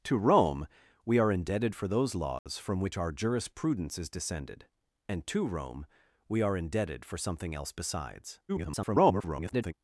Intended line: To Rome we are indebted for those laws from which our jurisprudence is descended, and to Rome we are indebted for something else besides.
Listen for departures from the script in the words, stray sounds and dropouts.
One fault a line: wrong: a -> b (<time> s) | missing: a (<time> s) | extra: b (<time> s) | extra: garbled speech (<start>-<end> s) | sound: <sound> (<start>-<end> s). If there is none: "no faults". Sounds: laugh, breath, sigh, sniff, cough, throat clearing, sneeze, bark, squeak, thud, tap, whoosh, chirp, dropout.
sound: dropout (2.4-2.5 s)
extra: garbled speech (8.5-9.7 s)